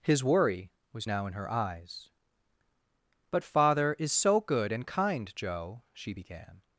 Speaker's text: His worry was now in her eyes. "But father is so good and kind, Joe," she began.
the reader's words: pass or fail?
pass